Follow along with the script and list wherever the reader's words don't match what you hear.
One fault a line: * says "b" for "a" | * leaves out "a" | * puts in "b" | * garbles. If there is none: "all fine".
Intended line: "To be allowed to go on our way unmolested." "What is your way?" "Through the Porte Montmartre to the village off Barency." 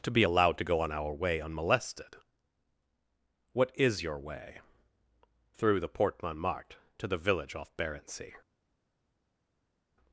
all fine